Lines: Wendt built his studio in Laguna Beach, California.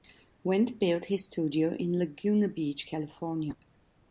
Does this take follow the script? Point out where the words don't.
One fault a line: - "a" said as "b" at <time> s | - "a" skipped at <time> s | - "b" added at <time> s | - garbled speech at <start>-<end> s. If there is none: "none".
none